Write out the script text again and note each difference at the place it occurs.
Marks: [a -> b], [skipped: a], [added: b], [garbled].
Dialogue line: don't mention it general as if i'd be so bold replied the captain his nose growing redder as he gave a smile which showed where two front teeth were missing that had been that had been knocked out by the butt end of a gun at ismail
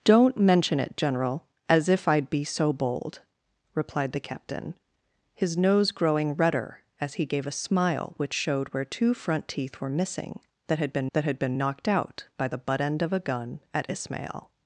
don't mention it general as if i'd be so bold replied the captain his nose growing redder as he gave a smile which showed where two front teeth were missing that had been that had been knocked out by the butt end of a gun at ismail